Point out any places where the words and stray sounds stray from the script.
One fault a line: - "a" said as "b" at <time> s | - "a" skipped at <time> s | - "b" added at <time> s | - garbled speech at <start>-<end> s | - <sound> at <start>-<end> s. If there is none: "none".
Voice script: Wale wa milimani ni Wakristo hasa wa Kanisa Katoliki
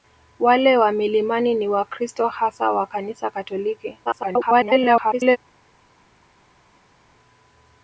- garbled speech at 4.0-5.4 s